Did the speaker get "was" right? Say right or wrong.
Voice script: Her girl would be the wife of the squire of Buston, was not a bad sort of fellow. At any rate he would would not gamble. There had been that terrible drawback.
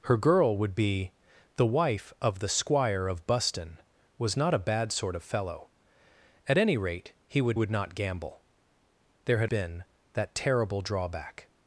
right